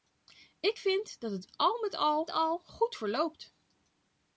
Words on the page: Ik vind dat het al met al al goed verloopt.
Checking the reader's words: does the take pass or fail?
pass